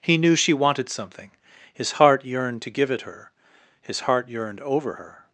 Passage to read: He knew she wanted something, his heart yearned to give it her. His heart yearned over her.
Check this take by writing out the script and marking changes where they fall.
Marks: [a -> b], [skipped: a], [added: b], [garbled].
He knew she wanted something, his heart yearned to give it her. His heart yearned over her.